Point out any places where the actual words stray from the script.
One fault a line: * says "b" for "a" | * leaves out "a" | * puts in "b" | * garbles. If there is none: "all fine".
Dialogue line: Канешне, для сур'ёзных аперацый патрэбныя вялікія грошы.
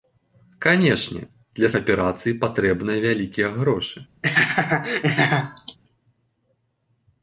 * leaves out "сур'ёзных"